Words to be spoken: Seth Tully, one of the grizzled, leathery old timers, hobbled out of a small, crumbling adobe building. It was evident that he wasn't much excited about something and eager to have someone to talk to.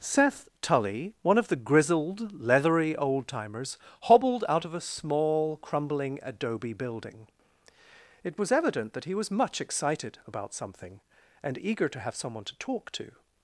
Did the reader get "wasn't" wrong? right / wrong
wrong